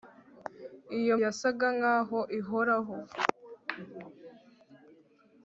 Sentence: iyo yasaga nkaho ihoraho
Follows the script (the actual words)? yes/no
yes